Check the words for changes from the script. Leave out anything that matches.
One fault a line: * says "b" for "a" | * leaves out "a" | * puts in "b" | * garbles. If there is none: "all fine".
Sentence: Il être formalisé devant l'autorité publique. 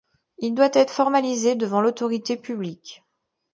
* puts in "doit"